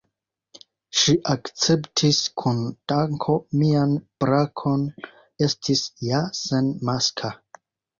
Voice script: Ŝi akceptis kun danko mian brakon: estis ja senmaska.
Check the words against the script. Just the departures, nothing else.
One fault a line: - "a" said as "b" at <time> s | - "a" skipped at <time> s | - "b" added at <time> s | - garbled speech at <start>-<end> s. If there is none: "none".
none